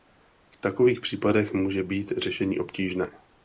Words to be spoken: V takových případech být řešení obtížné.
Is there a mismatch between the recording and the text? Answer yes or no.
yes